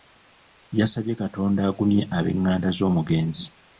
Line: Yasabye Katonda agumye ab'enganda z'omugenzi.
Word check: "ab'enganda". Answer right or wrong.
right